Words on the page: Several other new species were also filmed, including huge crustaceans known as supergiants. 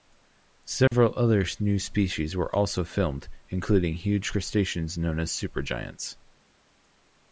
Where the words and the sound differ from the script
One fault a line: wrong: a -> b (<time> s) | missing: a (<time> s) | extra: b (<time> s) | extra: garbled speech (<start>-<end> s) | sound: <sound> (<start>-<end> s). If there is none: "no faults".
sound: dropout (0.9-0.9 s)